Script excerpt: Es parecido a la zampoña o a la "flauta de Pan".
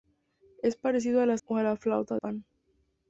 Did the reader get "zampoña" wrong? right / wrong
wrong